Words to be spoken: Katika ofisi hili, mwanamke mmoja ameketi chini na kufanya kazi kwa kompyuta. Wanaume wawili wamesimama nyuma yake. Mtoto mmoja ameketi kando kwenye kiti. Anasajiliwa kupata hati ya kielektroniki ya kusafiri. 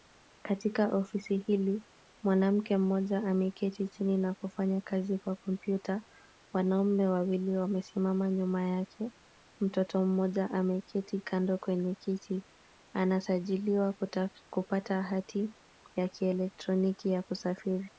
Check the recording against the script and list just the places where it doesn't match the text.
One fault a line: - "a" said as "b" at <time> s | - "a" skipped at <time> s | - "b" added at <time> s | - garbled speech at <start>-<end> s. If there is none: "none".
none